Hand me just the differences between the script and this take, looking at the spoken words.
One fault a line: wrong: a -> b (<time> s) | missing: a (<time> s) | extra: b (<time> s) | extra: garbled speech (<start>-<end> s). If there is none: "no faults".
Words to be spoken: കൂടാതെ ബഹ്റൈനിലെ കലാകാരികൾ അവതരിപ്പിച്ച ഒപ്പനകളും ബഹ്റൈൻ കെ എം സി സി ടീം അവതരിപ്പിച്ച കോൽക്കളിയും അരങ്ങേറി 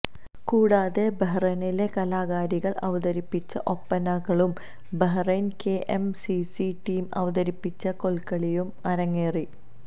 no faults